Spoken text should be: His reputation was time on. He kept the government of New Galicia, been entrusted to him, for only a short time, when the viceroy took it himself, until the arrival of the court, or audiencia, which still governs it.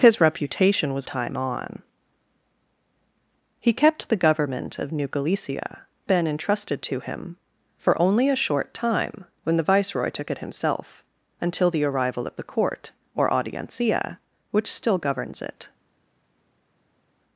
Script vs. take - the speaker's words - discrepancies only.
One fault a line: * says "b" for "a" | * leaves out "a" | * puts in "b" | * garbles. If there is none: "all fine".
all fine